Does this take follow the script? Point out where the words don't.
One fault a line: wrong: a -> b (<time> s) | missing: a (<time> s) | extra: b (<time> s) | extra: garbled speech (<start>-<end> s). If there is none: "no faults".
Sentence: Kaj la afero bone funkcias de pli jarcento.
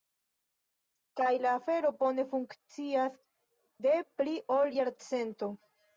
extra: ol (4.6 s)